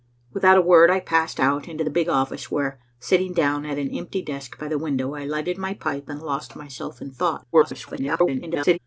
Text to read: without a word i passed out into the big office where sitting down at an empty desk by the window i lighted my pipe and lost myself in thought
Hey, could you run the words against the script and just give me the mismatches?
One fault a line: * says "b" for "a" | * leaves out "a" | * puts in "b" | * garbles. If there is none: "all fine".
* garbles